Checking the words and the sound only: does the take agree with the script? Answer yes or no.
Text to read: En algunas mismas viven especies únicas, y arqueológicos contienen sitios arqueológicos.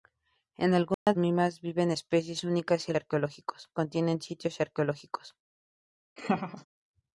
no